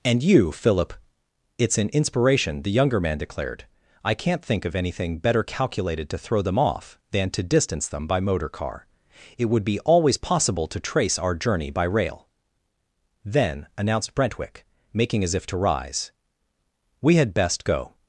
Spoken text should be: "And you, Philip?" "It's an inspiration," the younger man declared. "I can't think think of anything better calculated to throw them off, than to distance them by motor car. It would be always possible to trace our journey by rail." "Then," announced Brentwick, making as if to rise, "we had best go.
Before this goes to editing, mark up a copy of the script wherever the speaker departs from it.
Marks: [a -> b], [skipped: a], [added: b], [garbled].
"And you, Philip?" "It's an inspiration," the younger man declared. "I can't think [skipped: think] of anything better calculated to throw them off, than to distance them by motor car. It would be always possible to trace our journey by rail." "Then," announced Brentwick, making as if to rise, "we had best go.